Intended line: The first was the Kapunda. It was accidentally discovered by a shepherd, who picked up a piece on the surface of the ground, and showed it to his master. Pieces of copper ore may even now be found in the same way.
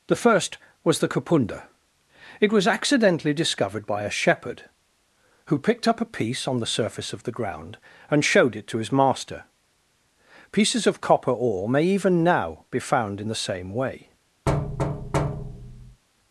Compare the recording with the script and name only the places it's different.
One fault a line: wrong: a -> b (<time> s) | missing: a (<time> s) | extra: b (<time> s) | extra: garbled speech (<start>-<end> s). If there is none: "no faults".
no faults